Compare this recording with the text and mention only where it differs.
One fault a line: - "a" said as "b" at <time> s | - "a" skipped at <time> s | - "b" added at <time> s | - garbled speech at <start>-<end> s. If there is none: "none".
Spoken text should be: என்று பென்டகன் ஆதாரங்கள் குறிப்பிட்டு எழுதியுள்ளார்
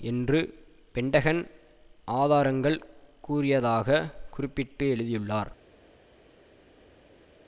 - "கூறியதாக" added at 3.2 s